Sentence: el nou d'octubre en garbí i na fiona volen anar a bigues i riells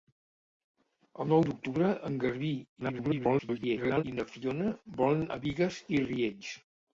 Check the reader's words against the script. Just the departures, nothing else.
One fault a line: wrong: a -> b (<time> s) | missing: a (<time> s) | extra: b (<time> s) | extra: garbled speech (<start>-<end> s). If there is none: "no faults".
extra: garbled speech (2.8-4.0 s)
missing: anar (5.2 s)